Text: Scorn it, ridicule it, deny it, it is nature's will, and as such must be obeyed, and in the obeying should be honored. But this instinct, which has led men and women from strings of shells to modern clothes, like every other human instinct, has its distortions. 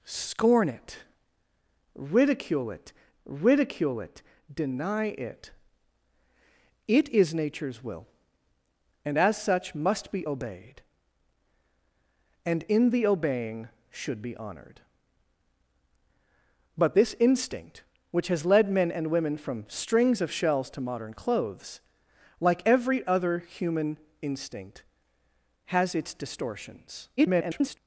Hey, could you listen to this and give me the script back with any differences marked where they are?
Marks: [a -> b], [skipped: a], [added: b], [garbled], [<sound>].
Scorn it, ridicule it, [added: ridicule it] deny it, it is nature's will, and as such must be obeyed, and in the obeying should be honored. But this instinct, which has led men and women from strings of shells to modern clothes, like every other human instinct, has its distortions. [garbled]